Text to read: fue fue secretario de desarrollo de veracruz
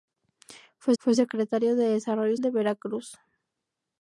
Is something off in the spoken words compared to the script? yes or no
no